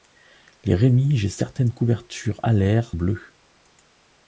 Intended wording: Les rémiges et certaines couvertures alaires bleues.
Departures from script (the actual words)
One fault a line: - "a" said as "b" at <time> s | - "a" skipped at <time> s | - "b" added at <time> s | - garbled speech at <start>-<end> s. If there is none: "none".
none